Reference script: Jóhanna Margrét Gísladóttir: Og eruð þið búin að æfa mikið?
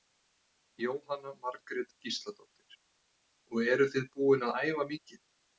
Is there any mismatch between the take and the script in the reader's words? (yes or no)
no